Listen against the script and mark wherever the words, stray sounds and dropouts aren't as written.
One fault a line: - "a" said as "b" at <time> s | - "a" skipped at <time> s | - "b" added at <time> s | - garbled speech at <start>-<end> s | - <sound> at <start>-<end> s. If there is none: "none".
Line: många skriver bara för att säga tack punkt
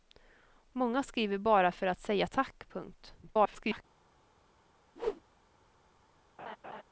- garbled speech at 3.2-3.8 s
- whoosh at 5.0-5.2 s
- laugh at 6.4-6.8 s